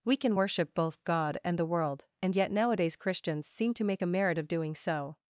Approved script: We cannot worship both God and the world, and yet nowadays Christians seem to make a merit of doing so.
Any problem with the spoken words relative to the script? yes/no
yes